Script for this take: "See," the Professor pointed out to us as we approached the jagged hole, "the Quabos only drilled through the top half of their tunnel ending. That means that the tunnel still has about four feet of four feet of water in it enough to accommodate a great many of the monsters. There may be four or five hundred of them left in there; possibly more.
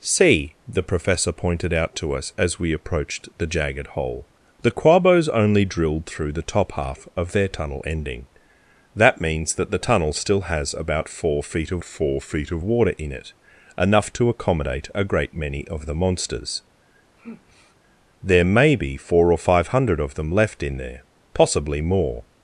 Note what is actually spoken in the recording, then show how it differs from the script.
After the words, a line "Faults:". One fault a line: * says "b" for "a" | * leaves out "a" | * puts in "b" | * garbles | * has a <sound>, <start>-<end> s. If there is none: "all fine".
"See," the Professor pointed out to us as we approached the jagged hole, "the Quabos only drilled through the top half of their tunnel ending. That means that the tunnel still has about four feet of four feet of water in it enough to accommodate a great many of the monsters. There may be four or five hundred of them left in there; possibly more.
Faults:
* has a sigh, 17.1-17.8 s